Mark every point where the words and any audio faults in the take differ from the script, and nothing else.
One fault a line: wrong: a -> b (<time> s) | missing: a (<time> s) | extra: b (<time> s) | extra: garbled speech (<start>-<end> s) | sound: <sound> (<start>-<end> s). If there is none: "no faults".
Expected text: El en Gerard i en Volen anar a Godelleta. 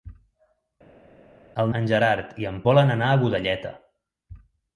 no faults